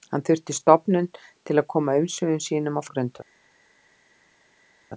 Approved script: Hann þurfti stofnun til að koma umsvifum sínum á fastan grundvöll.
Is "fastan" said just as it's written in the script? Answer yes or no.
no